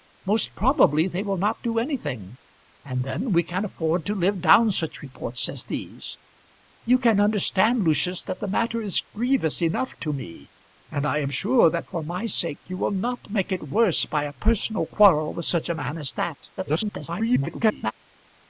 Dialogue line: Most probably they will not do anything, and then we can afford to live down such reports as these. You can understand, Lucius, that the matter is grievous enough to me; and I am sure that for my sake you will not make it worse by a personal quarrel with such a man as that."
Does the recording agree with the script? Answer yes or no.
no